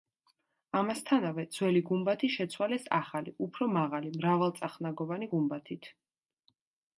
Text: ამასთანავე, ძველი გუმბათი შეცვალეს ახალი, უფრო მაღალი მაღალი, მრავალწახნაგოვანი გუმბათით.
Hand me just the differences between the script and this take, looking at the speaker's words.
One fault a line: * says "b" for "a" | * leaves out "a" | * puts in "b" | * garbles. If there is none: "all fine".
* leaves out "მაღალი"